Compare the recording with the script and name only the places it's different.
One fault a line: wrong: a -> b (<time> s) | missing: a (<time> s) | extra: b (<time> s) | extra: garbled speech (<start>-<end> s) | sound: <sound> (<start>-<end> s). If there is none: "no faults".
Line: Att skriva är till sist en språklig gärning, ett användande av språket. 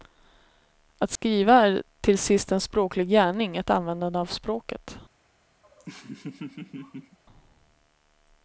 sound: dropout (1.2-1.2 s)
sound: laugh (5.6-7.2 s)